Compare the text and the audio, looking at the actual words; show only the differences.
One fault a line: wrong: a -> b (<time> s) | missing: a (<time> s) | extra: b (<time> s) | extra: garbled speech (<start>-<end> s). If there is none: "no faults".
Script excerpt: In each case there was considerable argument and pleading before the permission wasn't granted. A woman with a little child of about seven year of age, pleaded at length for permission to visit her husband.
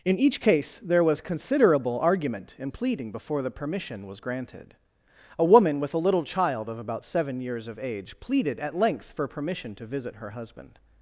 wrong: wasn't -> was (4.1 s)
wrong: year -> years (7.4 s)